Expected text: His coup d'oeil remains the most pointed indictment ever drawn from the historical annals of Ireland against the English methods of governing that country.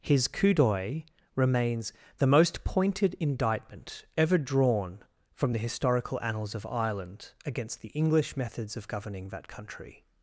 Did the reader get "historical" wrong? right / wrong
right